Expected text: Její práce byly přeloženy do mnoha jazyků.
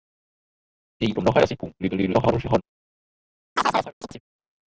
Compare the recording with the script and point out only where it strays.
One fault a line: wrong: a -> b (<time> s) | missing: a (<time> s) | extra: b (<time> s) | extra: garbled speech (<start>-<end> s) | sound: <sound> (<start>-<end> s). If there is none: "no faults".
missing: práce byly přeloženy (1.1 s)
extra: garbled speech (1.8-2.6 s)
sound: chirp (3.6-4.2 s)